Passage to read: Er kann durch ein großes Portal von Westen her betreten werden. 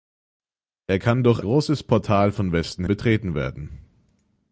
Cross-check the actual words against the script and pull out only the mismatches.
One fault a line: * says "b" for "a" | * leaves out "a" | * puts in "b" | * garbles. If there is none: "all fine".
* leaves out "ein"
* leaves out "her"